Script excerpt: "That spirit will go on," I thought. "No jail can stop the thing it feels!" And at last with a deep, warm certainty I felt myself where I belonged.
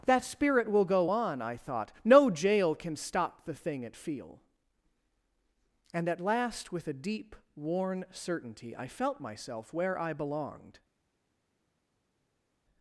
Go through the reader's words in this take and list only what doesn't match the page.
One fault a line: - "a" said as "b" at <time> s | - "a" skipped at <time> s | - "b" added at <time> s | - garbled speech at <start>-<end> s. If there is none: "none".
- "feels" said as "feel" at 4.0 s
- "warm" said as "worn" at 7.5 s